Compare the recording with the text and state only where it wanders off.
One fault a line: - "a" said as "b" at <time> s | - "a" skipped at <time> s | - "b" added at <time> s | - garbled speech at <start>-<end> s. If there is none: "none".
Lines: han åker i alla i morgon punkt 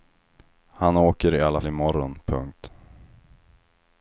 none